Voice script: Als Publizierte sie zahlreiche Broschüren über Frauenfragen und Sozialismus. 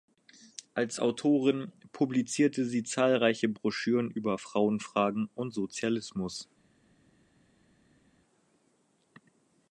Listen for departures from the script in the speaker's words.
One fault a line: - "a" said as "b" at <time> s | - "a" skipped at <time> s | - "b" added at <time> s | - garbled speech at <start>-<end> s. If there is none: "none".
- "Autorin" added at 1.0 s